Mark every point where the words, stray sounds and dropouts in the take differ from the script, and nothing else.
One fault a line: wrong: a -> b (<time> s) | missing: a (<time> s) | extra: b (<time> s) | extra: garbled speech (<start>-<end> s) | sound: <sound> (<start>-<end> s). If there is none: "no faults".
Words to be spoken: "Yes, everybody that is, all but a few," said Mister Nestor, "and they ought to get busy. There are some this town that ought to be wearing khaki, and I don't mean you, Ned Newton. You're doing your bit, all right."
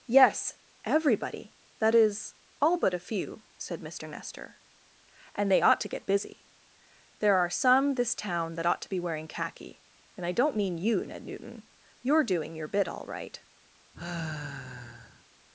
sound: sigh (13.9-15.2 s)